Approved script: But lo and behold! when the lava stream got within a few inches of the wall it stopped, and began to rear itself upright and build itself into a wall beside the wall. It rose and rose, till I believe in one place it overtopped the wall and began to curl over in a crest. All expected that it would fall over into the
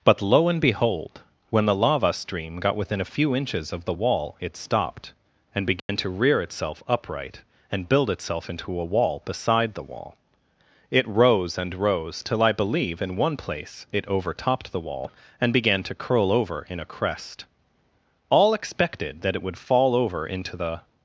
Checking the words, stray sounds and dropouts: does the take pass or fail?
fail